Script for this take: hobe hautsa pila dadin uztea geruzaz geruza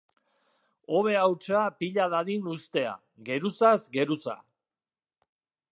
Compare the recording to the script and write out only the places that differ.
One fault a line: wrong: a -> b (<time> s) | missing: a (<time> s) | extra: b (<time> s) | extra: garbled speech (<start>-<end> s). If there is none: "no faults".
no faults